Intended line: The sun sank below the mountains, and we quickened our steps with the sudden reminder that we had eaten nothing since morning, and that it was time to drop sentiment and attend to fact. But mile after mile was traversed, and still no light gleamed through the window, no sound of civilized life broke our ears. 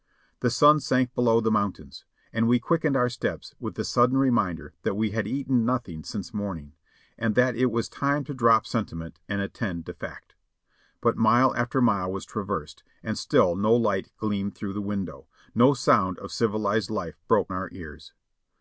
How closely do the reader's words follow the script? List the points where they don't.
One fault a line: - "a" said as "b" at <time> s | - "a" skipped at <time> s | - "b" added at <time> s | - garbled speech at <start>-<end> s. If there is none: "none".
none